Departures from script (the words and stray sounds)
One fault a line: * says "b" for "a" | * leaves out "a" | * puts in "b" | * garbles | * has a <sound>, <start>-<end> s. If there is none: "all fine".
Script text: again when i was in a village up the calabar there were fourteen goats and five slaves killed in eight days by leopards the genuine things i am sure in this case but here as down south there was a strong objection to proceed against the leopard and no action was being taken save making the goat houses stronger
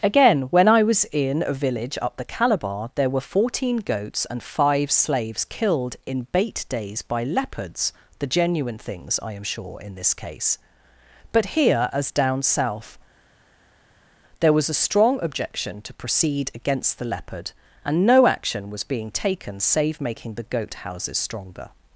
* says "bait" for "eight"